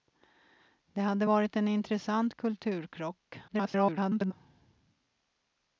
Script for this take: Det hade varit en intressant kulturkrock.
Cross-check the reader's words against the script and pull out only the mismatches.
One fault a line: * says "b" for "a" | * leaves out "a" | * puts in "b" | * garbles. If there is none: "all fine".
* garbles